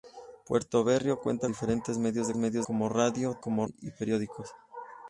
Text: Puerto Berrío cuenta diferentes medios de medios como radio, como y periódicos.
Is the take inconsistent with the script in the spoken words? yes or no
no